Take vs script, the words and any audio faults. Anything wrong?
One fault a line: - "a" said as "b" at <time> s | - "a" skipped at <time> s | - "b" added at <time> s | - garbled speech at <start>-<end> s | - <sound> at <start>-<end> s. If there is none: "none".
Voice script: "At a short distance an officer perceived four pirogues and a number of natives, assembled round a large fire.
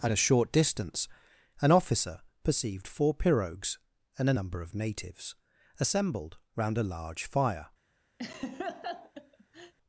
- laugh at 8.2-9.7 s